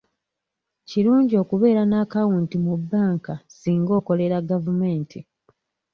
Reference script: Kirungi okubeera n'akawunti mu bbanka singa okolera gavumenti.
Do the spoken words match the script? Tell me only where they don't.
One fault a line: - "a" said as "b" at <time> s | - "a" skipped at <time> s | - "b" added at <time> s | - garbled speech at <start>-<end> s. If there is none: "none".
none